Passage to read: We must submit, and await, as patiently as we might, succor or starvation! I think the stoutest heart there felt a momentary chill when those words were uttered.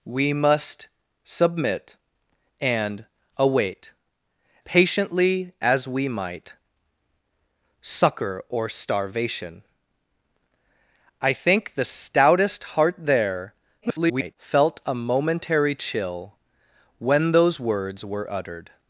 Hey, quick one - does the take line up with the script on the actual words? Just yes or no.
no